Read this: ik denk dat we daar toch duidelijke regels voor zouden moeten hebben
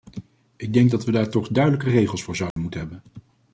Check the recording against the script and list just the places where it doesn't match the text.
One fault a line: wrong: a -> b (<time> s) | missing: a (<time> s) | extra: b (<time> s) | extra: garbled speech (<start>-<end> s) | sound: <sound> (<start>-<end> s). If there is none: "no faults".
sound: dropout (2.5-2.6 s)